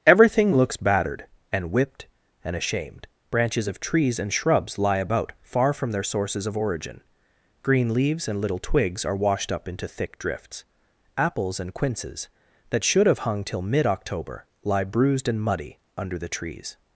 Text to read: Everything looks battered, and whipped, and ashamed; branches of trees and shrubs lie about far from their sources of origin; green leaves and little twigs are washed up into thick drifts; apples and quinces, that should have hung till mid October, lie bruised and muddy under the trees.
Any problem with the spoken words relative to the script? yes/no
no